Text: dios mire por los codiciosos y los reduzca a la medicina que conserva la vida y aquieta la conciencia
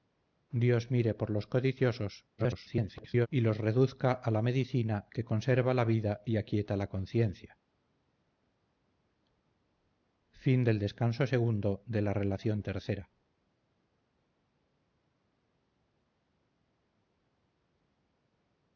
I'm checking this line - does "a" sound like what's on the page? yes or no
yes